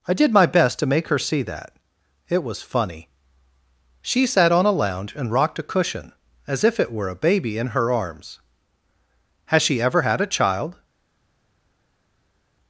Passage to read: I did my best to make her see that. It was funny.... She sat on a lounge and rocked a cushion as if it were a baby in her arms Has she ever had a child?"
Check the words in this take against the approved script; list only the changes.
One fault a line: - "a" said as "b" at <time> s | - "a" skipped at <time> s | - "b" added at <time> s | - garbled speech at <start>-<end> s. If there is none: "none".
none